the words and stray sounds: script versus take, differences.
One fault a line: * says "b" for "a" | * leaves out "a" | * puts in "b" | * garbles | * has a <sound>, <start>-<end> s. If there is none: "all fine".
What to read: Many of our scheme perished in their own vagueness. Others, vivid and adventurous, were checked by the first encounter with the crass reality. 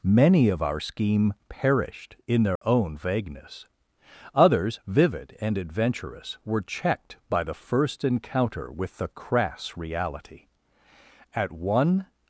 * has a dropout, 2.6-2.6 s
* puts in "At one"